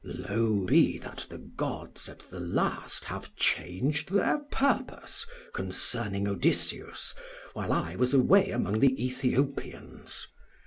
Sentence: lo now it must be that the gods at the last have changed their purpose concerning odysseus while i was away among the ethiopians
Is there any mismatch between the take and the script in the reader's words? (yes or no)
yes